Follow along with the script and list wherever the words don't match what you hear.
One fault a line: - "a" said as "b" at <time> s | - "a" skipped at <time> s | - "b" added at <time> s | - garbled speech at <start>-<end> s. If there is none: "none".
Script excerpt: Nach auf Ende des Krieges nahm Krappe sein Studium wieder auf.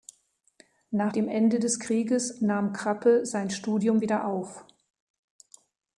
- "auf" said as "dem" at 1.1 s